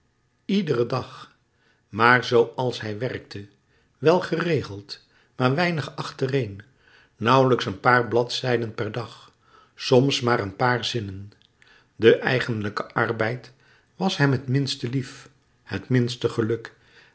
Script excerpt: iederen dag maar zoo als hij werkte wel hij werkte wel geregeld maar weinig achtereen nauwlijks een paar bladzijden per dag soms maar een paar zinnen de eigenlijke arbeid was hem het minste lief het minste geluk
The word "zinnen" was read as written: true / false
true